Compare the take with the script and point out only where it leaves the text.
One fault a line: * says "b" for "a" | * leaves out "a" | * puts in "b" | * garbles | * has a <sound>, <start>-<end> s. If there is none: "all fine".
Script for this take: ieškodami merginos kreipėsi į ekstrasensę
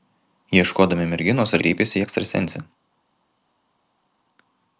all fine